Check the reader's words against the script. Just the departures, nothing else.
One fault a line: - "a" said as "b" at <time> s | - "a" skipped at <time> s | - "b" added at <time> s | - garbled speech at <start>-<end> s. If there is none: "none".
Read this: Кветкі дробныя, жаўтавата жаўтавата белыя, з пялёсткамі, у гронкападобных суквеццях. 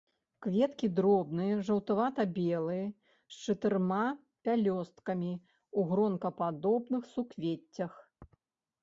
- "жаўтавата" skipped at 2.2 s
- "чатырма" added at 3.5 s